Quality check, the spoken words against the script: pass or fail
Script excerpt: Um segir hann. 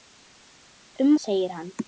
pass